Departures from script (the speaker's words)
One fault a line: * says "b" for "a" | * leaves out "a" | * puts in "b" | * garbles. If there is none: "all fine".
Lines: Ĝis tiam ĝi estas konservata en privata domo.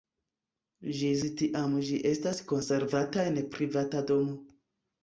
all fine